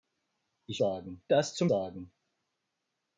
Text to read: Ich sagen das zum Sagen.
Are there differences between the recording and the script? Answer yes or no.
no